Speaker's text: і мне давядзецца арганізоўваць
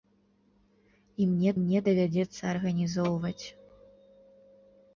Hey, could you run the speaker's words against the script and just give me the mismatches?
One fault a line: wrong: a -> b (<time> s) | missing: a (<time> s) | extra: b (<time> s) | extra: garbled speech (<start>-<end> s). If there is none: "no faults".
extra: мне (1.6 s)